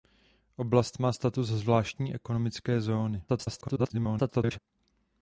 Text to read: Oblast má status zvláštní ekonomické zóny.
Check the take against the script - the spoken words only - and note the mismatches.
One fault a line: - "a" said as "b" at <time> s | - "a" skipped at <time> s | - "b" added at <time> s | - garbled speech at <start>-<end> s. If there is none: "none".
- garbled speech at 3.3-4.6 s